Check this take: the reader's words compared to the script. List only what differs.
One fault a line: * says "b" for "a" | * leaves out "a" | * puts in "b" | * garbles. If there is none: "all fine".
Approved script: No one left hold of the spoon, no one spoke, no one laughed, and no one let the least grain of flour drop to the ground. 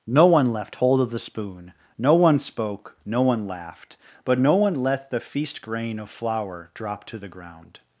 * says "but" for "and"
* says "feast" for "least"